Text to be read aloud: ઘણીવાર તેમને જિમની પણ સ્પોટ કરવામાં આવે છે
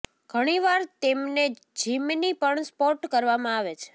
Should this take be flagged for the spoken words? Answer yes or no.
no